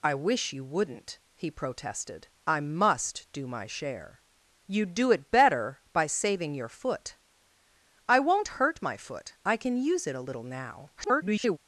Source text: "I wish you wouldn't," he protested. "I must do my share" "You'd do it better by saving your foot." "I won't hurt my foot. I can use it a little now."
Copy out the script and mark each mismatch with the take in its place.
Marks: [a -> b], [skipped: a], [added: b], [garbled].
"I wish you wouldn't," he protested. "I must do my share" "You'd do it better by saving your foot." "I won't hurt my foot. I can use it a little now." [garbled]